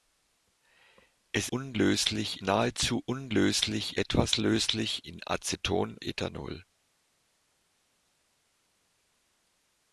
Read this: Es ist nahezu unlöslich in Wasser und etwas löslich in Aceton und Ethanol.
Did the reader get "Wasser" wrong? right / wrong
wrong